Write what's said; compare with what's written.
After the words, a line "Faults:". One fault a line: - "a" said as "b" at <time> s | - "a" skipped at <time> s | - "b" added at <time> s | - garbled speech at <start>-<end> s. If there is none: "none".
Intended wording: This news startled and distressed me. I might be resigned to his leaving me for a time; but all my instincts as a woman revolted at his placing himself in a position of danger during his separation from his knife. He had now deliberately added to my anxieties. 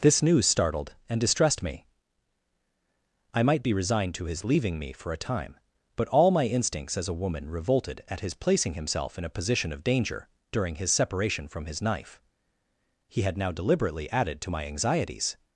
This news startled and distressed me. I might be resigned to his leaving me for a time; but all my instincts as a woman revolted at his placing himself in a position of danger during his separation from his knife. He had now deliberately added to my anxieties.
Faults:
none